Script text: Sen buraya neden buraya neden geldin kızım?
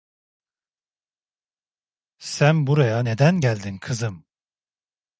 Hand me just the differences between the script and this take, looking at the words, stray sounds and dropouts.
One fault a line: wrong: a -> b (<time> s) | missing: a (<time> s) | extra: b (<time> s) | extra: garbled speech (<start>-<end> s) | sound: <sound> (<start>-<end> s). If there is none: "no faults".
missing: buraya neden (3.4 s)